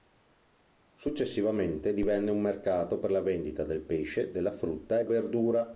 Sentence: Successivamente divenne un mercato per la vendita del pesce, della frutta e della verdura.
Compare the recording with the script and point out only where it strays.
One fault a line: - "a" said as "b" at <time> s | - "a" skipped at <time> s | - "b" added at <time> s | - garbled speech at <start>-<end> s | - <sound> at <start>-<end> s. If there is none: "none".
- "della" skipped at 5.0 s